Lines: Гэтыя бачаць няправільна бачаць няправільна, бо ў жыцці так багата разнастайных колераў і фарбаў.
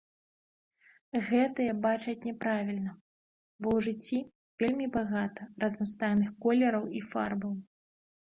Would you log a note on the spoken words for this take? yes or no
yes